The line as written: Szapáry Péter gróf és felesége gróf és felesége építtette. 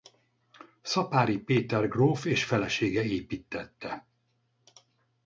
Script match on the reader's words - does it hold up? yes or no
no